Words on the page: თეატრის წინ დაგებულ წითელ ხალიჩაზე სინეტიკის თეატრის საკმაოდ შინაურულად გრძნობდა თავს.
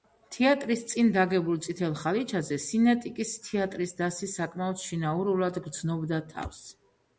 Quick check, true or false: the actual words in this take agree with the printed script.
false